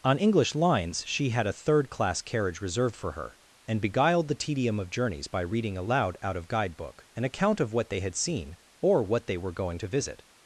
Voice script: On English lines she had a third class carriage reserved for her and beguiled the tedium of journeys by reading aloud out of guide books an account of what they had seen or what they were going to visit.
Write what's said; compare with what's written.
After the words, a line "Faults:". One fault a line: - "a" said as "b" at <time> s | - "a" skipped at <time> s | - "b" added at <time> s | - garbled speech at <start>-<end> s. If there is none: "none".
On English lines she had a third class carriage reserved for her and beguiled the tedium of journeys by reading aloud out of guide book an account of what they had seen or what they were going to visit.
Faults:
- "books" said as "book" at 6.8 s